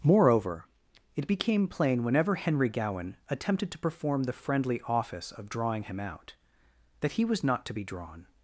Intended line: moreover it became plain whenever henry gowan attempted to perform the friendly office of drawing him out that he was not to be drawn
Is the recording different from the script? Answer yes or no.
no